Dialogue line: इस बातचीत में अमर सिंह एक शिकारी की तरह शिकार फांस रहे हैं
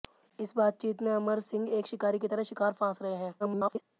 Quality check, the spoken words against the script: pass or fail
fail